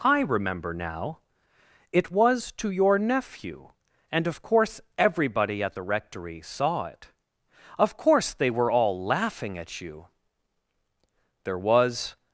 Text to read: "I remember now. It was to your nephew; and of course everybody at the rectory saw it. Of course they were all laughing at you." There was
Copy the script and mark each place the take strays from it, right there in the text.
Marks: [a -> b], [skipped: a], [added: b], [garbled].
"I remember now. It was to your nephew; and of course everybody at the rectory saw it. Of course they were all laughing at you." There was